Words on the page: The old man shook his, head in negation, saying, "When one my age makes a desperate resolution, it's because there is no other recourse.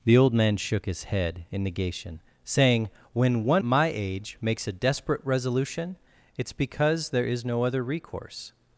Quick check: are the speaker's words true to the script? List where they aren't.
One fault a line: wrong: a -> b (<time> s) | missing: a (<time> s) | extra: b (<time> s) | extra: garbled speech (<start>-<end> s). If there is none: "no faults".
no faults